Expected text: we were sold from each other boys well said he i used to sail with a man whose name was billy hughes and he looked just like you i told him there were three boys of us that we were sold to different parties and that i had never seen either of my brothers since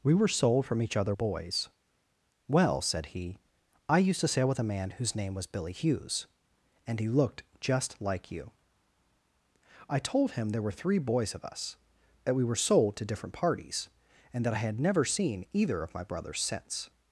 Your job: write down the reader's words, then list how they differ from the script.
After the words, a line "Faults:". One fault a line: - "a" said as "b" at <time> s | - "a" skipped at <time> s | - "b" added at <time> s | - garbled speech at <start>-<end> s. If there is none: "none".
we were sold from each other boys well said he i used to sail with a man whose name was billy hughes and he looked just like you i told him there were three boys of us that we were sold to different parties and that i had never seen either of my brothers since
Faults:
none